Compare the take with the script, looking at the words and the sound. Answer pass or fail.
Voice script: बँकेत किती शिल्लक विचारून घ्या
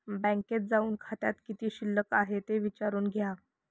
fail